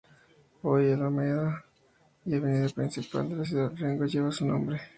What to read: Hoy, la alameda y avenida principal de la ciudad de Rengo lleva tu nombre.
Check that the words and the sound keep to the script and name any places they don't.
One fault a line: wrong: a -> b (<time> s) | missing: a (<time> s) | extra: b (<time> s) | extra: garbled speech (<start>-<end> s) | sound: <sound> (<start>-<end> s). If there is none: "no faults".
wrong: tu -> su (4.3 s)